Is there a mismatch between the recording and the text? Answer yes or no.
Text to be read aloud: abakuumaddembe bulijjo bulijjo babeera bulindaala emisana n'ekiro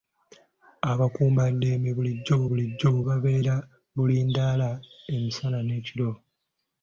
no